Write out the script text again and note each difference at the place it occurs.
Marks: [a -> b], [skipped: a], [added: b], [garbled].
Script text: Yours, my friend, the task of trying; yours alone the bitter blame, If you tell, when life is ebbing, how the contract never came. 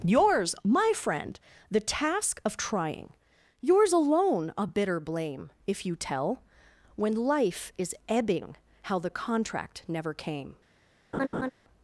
Yours, my friend, the task of trying; yours alone [the -> a] bitter blame, If you tell, when life is ebbing, how the contract never came.